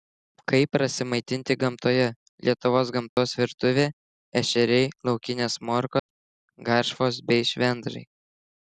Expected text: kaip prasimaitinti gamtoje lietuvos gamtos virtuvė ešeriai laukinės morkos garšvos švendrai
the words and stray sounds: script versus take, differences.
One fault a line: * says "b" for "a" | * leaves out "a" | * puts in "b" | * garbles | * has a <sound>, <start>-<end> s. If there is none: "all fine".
* has a dropout, 3.1-3.2 s
* has a dropout, 6.0-6.1 s
* puts in "bei"